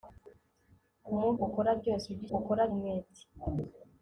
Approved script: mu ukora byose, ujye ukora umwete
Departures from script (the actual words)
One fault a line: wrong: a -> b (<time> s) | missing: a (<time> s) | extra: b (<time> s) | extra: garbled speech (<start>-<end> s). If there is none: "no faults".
no faults